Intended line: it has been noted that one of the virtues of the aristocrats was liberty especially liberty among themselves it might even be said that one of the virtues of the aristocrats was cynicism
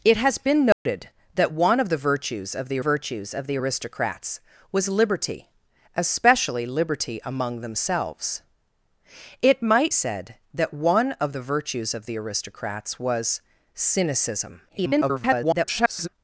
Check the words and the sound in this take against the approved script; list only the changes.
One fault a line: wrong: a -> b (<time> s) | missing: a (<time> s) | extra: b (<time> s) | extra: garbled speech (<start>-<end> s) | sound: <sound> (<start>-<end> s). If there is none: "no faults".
sound: dropout (0.7-0.9 s)
extra: virtues of the (2.8 s)
missing: even be (9.9 s)
extra: garbled speech (14.7-16.1 s)